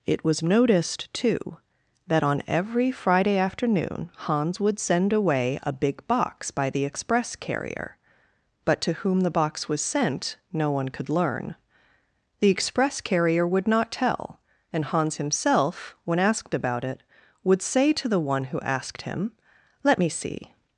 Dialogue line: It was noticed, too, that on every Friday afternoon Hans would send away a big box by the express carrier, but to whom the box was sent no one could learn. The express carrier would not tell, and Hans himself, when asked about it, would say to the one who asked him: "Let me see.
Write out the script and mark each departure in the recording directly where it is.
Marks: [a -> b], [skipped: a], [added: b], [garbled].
It was noticed, too, that on every Friday afternoon Hans would send away a big box by the express carrier, but to whom the box was sent no one could learn. The express carrier would not tell, and Hans himself, when asked about it, would say to the one who asked him: "Let me see.